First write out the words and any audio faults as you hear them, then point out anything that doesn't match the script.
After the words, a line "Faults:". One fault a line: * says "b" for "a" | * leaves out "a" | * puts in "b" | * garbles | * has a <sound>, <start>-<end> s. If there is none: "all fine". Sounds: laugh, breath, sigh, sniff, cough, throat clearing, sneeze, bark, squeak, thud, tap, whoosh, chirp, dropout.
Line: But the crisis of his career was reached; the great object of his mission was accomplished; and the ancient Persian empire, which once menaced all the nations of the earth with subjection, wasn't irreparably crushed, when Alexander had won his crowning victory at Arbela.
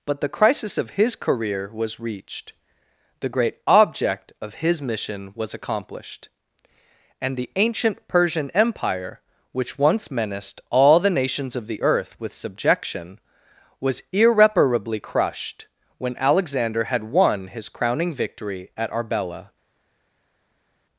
But the crisis of his career was reached; the great object of his mission was accomplished; and the ancient Persian empire, which once menaced all the nations of the earth with subjection, was irreparably crushed, when Alexander had won his crowning victory at Arbela.
Faults:
* says "was" for "wasn't"